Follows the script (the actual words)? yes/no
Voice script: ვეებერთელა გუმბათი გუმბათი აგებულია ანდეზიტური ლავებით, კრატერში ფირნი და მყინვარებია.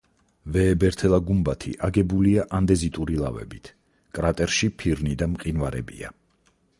no